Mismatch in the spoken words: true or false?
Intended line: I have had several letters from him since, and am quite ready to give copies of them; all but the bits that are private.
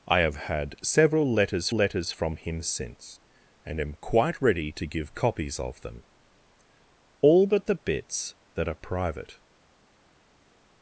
true